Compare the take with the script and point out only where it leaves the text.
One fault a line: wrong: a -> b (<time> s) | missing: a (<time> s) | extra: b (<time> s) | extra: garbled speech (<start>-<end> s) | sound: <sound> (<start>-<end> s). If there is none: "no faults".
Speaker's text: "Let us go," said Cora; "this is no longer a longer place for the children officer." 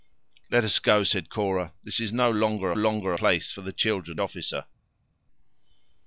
no faults